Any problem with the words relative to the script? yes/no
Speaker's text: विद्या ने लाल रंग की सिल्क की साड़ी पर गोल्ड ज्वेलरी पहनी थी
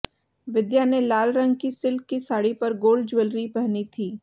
no